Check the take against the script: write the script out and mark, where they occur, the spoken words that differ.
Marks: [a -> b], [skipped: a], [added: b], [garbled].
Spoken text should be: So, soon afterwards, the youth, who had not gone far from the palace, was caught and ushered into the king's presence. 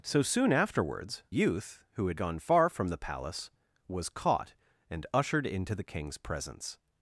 So, soon afterwards, [skipped: the] youth, who had [skipped: not] gone far from the palace, was caught and ushered into the king's presence.